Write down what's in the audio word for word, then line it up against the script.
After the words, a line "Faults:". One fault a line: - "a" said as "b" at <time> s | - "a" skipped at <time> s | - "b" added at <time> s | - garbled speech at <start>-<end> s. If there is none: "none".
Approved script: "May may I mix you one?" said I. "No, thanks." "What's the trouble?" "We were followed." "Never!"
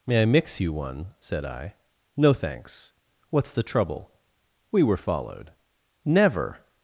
"May I mix you one?" said I. "No, thanks." "What's the trouble?" "We were followed." "Never!"
Faults:
- "may" skipped at 0.2 s